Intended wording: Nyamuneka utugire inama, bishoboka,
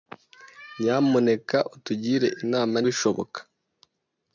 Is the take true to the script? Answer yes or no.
yes